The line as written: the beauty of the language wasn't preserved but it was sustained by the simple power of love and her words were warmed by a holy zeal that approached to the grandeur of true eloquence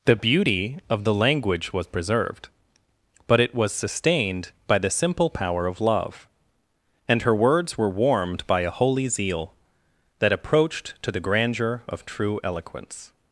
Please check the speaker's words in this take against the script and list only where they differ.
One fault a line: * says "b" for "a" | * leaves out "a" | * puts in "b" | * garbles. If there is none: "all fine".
* says "was" for "wasn't"